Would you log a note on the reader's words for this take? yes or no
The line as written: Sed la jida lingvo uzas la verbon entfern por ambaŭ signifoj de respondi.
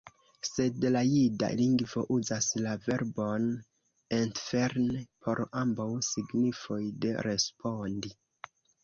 no